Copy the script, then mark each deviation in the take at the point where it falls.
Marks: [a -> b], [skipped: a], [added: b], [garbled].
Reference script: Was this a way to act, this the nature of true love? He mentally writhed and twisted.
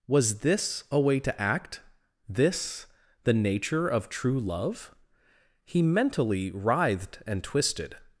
Was this a way to act, this the nature of true love? He mentally writhed and twisted.